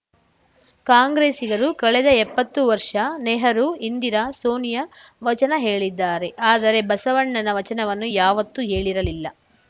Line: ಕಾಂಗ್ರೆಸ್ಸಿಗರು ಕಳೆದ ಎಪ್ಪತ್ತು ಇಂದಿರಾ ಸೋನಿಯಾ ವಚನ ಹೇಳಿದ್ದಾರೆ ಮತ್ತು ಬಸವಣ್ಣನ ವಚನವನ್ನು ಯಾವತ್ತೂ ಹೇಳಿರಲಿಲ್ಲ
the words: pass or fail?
fail